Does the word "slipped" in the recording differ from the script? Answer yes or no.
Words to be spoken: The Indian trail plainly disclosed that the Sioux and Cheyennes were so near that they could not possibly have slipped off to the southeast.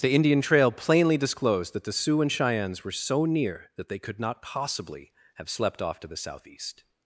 yes